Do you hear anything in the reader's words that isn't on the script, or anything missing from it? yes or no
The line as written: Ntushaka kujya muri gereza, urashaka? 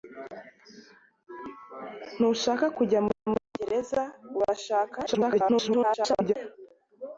yes